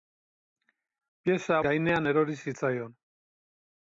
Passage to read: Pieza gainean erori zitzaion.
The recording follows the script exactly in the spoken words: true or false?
true